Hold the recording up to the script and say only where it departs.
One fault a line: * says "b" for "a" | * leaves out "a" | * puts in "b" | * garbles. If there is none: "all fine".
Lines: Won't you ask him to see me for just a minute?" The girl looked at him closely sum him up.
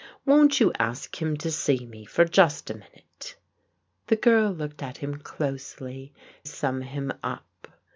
all fine